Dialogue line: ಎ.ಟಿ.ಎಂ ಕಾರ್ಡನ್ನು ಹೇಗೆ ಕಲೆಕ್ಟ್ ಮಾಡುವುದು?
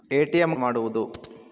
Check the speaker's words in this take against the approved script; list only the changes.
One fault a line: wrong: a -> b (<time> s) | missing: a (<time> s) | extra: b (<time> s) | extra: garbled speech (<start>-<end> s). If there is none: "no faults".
missing: ಕಾರ್ಡನ್ನು ಹೇಗೆ ಕಲೆಕ್ಟ್ (0.6 s)